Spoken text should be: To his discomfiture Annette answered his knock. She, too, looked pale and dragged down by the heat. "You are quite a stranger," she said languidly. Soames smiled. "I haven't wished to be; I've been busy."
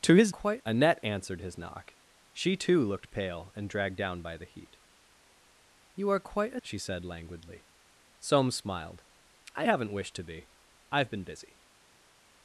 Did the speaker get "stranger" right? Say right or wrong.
wrong